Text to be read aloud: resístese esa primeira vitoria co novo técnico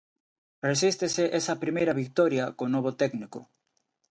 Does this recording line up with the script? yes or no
yes